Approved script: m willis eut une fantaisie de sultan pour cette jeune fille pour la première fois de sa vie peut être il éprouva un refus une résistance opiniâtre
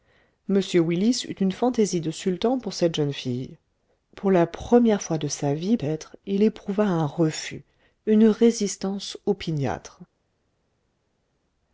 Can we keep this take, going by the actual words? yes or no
no